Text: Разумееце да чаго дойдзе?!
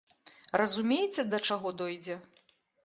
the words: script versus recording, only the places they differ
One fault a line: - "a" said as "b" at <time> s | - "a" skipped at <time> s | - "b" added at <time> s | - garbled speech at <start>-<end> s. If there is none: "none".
none